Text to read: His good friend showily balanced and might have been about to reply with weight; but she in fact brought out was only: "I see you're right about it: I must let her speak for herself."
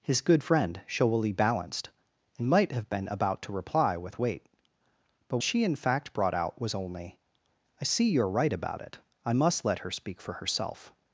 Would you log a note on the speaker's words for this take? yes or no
no